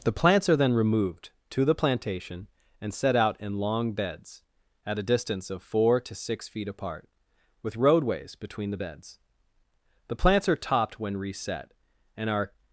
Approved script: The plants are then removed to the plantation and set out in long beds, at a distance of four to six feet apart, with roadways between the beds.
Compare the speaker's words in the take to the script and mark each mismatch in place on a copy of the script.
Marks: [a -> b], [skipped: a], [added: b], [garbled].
The plants are then removed to the plantation and set out in long beds, at a distance of four to six feet apart, with roadways between the beds. [added: The plants are topped when reset and are]